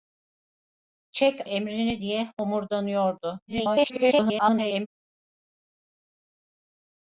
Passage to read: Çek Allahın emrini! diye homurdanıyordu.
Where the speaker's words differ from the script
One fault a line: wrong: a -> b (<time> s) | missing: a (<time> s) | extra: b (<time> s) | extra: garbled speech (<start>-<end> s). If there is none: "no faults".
missing: Allahın (1.4 s)
extra: garbled speech (3.5-4.9 s)